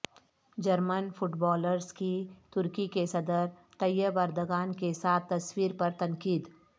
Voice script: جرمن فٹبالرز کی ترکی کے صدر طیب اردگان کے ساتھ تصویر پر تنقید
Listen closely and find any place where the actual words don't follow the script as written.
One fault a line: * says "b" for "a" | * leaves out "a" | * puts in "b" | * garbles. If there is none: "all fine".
all fine